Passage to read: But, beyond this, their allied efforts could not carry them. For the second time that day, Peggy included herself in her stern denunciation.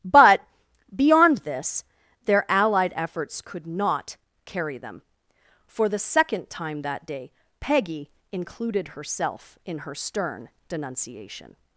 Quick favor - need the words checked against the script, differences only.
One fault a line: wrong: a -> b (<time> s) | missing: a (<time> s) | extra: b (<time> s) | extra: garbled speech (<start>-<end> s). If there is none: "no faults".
no faults